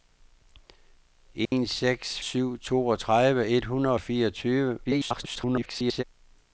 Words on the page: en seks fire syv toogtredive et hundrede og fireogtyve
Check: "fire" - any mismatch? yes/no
yes